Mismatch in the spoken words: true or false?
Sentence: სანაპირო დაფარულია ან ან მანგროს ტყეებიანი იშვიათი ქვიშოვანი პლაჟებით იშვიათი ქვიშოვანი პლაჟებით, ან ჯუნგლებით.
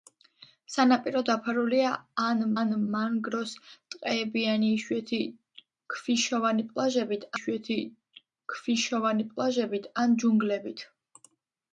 false